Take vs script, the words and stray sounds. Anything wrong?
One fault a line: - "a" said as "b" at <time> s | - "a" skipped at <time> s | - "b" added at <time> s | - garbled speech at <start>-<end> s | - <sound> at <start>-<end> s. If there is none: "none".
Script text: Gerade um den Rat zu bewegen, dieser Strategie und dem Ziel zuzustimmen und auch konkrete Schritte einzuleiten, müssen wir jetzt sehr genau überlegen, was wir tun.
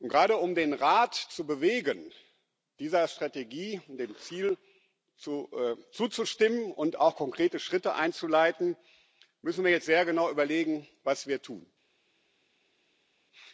none